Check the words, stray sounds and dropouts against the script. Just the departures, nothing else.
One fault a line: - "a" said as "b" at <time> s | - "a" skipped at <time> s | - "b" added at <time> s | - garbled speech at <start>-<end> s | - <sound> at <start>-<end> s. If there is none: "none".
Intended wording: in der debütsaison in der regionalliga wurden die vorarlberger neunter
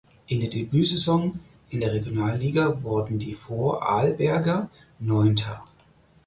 none